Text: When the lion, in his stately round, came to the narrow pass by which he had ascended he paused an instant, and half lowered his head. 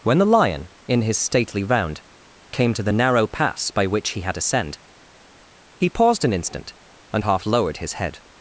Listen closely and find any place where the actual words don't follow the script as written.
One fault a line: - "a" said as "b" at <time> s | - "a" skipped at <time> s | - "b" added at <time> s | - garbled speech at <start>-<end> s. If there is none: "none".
- "ascended" said as "ascend" at 4.4 s